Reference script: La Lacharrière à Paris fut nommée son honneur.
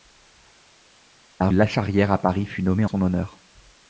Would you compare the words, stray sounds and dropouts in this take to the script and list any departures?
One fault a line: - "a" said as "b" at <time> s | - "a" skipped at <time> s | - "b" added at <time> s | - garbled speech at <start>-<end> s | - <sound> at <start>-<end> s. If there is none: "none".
none